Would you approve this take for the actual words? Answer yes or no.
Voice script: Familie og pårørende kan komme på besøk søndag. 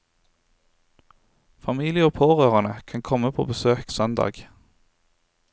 yes